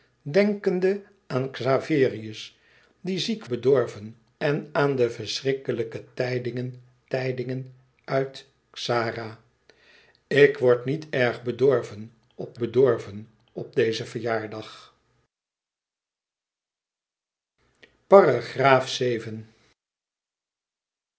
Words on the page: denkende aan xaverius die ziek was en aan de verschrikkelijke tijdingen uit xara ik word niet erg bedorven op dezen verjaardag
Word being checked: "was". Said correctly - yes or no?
no